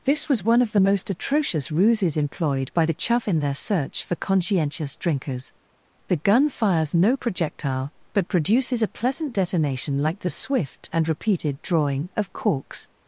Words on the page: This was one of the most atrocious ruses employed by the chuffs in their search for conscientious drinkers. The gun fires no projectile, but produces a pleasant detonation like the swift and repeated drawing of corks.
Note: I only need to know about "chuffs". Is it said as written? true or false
false